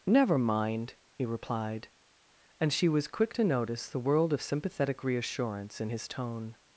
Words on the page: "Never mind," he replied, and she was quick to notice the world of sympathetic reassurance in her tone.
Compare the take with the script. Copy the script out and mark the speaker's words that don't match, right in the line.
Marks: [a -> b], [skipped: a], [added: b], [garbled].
"Never mind," he replied, and she was quick to notice the world of sympathetic reassurance in [her -> his] tone.